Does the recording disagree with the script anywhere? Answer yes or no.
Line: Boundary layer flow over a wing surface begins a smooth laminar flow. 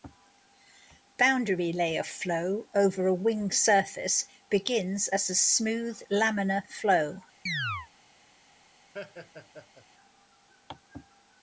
yes